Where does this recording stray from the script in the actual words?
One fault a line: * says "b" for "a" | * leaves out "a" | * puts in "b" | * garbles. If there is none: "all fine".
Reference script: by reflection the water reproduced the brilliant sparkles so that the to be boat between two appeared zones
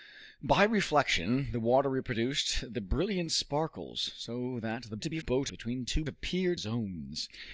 all fine